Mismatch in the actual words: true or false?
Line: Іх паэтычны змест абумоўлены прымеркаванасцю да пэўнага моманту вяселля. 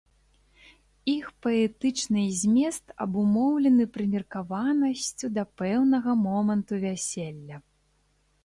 false